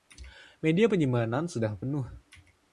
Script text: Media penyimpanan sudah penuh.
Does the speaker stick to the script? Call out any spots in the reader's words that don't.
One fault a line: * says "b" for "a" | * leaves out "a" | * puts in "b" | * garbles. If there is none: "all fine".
all fine